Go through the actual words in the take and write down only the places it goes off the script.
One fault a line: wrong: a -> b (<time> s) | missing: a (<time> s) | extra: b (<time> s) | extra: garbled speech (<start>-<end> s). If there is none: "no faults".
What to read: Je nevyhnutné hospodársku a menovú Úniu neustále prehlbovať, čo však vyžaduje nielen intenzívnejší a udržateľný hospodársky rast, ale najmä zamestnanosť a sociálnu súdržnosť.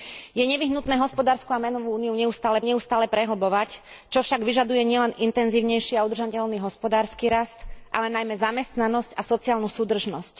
extra: neustále (2.6 s)